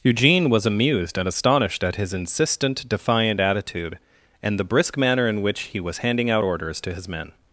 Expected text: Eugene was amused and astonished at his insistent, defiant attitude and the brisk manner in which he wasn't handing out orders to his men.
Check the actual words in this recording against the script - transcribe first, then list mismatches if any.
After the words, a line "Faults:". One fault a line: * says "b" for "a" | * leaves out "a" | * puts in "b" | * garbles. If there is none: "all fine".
Eugene was amused and astonished at his insistent, defiant attitude and the brisk manner in which he was handing out orders to his men.
Faults:
* says "was" for "wasn't"